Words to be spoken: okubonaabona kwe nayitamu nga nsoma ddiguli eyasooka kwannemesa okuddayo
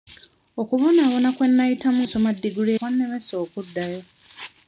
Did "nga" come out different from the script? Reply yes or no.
yes